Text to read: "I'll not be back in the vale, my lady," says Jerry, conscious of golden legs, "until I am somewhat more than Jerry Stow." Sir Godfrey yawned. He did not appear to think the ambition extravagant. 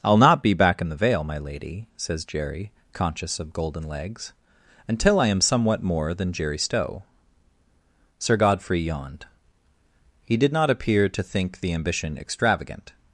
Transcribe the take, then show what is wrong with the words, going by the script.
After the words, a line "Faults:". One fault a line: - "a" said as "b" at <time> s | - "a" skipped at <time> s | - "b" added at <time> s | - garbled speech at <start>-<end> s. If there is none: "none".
"I'll not be back in the vale, my lady," says Jerry, conscious of golden legs, "until I am somewhat more than Jerry Stow." Sir Godfrey yawned. He did not appear to think the ambition extravagant.
Faults:
none